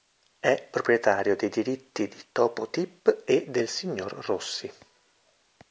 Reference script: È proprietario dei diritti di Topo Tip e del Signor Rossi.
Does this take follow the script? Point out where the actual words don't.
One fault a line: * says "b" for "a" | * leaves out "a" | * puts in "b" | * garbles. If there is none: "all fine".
all fine